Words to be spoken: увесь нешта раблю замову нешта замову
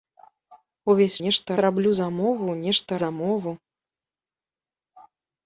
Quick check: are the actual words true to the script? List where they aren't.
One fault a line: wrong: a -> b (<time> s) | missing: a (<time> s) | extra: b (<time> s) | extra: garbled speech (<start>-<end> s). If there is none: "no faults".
no faults